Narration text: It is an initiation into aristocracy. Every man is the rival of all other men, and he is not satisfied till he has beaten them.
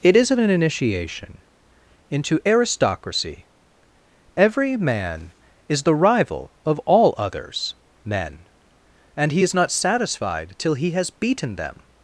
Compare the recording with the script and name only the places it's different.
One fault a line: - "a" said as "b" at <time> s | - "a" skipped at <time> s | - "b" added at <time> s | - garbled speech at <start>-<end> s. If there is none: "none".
- "other" said as "others" at 7.2 s